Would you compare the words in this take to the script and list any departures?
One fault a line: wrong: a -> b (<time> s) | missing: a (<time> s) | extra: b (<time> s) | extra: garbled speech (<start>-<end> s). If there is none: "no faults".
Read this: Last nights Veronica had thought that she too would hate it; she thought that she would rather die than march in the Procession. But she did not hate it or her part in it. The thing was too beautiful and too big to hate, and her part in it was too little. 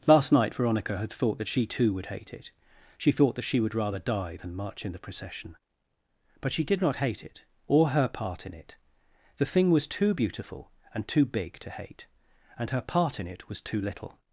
wrong: nights -> night (0.3 s)